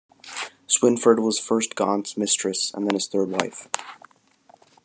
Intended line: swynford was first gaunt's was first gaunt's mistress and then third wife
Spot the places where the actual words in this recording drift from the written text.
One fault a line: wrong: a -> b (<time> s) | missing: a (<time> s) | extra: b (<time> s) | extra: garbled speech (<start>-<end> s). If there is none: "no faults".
missing: was first gaunt's (2.2 s)
extra: his (2.9 s)